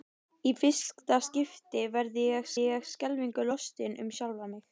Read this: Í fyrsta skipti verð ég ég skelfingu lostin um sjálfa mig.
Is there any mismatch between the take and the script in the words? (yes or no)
no